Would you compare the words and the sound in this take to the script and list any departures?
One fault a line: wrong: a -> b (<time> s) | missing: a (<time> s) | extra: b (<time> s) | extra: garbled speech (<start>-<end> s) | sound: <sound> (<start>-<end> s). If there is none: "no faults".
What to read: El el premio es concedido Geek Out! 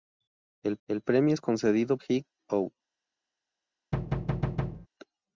sound: thud (3.9-4.9 s)